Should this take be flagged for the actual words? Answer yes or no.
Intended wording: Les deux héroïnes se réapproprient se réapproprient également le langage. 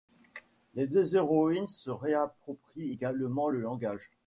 yes